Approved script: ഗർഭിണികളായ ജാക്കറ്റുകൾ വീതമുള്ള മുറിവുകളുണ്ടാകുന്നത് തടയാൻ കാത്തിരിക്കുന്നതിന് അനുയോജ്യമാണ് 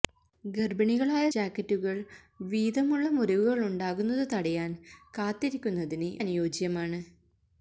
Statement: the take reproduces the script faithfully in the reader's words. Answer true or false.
true